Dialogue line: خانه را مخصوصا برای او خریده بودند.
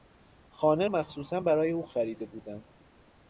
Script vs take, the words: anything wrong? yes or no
yes